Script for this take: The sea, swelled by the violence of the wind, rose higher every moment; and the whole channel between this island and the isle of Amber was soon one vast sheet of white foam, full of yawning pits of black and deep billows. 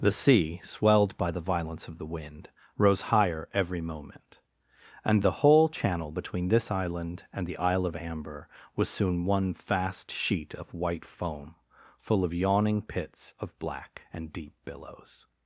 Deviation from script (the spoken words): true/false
false